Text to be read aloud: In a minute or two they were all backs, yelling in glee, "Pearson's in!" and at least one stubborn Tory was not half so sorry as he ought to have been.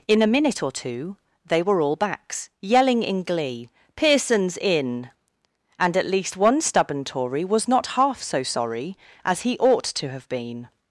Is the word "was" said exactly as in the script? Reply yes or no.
yes